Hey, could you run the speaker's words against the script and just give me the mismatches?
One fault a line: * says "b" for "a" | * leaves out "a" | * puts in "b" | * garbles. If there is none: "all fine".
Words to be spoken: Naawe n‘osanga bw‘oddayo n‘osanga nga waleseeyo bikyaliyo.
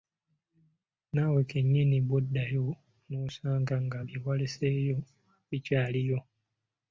* says "kennyini" for "n‘osanga"
* puts in "bye"